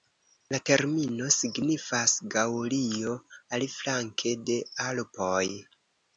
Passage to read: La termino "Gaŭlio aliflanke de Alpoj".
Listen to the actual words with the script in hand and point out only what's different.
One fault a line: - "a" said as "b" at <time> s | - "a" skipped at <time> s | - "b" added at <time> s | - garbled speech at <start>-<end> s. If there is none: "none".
- "signifas" added at 1.4 s